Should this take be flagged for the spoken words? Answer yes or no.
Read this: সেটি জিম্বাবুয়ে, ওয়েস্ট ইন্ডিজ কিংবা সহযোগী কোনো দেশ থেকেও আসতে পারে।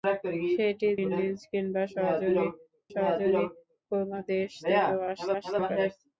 yes